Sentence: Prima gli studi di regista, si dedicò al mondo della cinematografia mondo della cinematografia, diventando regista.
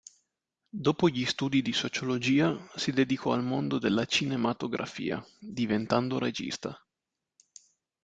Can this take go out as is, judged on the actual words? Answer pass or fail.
fail